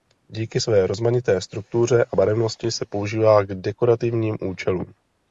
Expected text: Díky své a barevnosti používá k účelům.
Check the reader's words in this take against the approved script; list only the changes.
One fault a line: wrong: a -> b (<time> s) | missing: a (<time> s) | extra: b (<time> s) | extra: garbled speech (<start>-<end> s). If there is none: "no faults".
extra: rozmanité struktuře (0.9 s)
extra: se (2.7 s)
extra: dekorativním (3.5 s)